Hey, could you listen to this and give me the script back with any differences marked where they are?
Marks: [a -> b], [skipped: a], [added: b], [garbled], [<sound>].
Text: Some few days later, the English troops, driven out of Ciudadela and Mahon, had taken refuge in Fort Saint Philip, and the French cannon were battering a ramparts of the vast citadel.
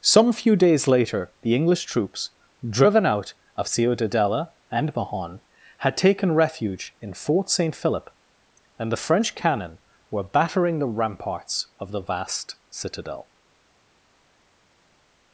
Some few days later, the English troops, driven out of Ciudadela and Mahon, had taken refuge in Fort Saint Philip, and the French cannon were battering [a -> the] ramparts of the vast citadel.